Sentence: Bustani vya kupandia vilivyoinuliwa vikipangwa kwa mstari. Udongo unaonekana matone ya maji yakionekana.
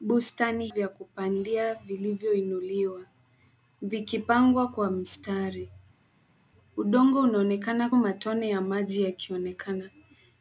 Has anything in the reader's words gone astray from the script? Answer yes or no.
no